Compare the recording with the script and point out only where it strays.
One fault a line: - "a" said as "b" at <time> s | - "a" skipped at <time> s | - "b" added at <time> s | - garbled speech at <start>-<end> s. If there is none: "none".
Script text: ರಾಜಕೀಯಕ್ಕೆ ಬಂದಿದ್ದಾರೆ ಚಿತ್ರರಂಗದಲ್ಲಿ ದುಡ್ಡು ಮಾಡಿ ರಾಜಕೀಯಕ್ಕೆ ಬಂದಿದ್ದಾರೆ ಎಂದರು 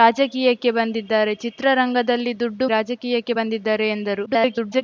- "ಮಾಡಿ" skipped at 2.6 s
- garbled speech at 4.3-4.8 s